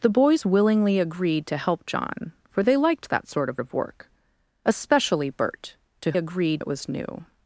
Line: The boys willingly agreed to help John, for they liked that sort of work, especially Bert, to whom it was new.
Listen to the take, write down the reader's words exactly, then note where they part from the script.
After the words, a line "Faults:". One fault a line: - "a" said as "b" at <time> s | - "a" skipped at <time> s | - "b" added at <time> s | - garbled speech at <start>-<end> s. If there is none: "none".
The boys willingly agreed to help John, for they liked that sort of of work, especially Bert, to agreed it was new.
Faults:
- "of" added at 3.6 s
- "whom" said as "agreed" at 6.2 s